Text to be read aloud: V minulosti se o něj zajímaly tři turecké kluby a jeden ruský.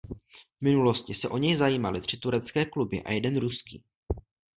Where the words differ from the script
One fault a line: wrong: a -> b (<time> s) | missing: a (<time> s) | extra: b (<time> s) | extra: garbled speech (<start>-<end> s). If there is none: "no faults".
no faults